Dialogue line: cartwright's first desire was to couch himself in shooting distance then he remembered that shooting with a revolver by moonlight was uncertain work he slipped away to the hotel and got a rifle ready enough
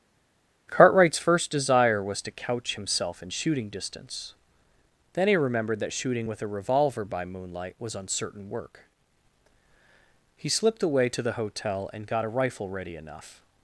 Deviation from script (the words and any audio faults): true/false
false